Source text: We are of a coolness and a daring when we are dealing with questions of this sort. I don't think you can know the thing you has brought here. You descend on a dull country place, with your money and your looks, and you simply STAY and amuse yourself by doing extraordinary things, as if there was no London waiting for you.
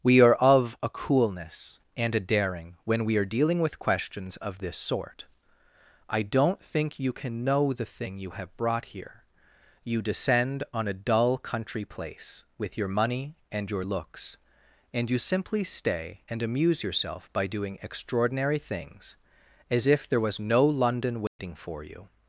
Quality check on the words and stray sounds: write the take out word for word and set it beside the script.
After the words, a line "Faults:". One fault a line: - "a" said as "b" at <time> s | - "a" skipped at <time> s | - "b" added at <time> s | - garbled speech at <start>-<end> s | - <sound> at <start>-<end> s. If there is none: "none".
We are of a coolness and a daring when we are dealing with questions of this sort. I don't think you can know the thing you have brought here. You descend on a dull country place, with your money and your looks, and you simply STAY and amuse yourself by doing extraordinary things, as if there was no London waiting for you.
Faults:
- "has" said as "have" at 8.3 s
- dropout at 21.3-21.4 s